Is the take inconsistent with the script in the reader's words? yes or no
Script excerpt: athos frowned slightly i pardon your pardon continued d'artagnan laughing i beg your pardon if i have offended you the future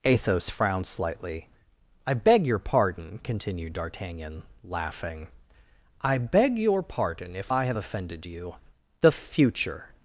yes